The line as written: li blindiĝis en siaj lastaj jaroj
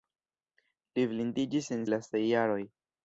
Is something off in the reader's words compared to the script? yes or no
yes